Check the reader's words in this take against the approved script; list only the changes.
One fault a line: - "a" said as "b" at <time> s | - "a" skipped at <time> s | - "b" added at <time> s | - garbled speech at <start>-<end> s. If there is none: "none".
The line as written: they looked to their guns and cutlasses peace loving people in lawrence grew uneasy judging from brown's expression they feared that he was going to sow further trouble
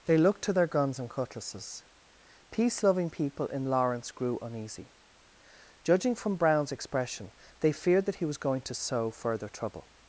none